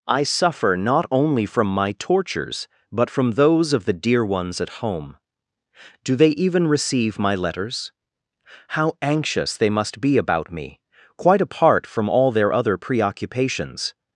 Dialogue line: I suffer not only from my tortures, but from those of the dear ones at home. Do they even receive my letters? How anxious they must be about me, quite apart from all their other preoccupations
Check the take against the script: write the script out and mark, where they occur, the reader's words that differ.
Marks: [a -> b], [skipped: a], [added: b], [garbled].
I suffer not only from my tortures, but from those of the dear ones at home. Do they even receive my letters? How anxious they must be about me, quite apart from all their other preoccupations